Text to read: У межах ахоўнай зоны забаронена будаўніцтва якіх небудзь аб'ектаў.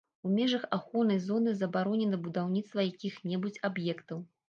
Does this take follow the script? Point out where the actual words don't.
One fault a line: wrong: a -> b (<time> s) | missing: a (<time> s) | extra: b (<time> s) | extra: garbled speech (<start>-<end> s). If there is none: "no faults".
no faults